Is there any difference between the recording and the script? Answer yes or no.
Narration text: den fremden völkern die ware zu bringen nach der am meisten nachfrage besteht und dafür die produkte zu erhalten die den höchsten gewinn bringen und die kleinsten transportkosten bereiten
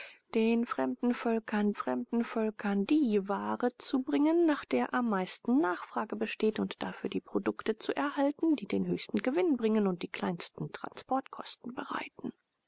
yes